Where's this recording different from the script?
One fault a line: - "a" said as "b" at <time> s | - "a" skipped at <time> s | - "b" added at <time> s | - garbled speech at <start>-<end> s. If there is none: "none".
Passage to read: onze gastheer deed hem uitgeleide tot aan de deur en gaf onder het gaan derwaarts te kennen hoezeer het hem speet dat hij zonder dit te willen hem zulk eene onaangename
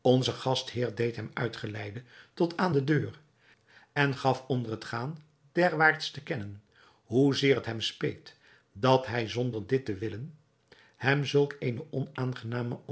none